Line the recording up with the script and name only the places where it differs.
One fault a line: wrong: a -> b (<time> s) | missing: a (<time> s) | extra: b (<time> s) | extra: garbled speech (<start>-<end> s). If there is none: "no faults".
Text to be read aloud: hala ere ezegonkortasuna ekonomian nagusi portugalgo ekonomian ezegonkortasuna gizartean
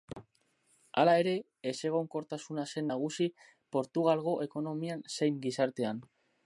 wrong: ekonomian -> zen (2.7 s)
wrong: ezegonkortasuna -> zein (5.2 s)